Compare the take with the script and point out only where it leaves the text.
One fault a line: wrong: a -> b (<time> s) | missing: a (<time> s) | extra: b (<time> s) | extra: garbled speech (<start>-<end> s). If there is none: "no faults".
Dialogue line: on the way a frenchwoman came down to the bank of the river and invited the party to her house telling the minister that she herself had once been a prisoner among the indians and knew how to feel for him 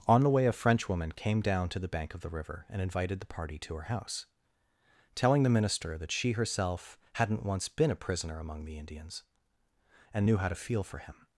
wrong: had -> hadn't (7.1 s)